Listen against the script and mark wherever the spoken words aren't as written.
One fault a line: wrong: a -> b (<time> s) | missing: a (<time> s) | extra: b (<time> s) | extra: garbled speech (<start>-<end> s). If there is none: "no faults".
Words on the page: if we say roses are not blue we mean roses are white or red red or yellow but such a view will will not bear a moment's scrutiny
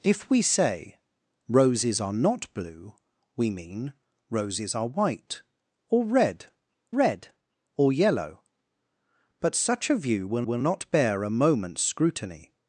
no faults